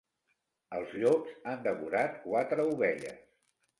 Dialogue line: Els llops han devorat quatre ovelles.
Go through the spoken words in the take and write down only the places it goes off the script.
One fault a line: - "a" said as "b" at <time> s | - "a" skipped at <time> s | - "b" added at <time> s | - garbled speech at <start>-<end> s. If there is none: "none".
none